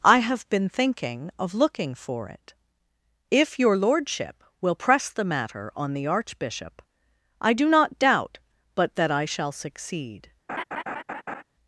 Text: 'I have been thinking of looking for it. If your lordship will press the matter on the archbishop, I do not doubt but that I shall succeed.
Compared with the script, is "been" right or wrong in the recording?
right